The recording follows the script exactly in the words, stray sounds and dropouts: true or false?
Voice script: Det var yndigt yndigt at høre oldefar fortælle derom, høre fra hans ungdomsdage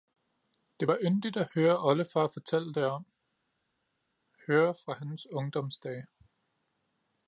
false